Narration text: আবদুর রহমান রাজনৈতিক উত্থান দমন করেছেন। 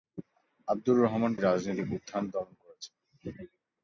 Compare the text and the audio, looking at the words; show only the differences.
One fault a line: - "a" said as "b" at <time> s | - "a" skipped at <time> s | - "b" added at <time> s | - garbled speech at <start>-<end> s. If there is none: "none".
none